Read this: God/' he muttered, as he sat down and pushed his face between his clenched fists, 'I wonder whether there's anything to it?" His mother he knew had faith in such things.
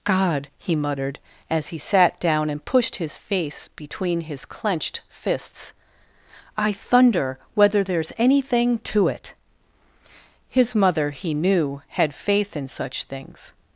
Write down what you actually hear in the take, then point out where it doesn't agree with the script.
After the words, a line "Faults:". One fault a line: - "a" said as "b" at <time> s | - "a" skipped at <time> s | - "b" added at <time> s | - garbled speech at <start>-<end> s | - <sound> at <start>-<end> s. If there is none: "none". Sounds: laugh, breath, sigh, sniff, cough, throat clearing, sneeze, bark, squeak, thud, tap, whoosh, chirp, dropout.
God/' he muttered, as he sat down and pushed his face between his clenched fists, 'I thunder whether there's anything to it?" His mother he knew had faith in such things.
Faults:
- "wonder" said as "thunder" at 6.7 s